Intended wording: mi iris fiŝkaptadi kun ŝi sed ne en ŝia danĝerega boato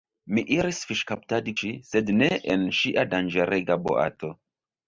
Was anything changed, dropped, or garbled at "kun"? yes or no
yes